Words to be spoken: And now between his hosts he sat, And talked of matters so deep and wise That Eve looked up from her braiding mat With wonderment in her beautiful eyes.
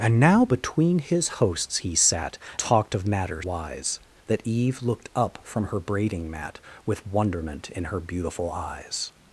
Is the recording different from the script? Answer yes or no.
yes